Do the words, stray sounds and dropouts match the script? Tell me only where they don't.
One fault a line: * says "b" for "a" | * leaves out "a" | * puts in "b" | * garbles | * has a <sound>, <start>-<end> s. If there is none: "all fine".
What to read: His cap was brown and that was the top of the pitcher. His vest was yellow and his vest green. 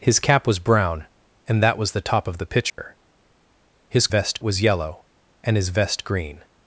* has a dropout, 2.7-2.8 s